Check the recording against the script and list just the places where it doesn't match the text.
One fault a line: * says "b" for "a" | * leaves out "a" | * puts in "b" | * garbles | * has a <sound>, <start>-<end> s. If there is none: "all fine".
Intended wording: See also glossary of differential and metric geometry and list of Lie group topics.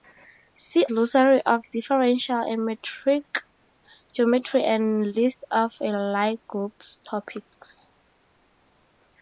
* leaves out "also"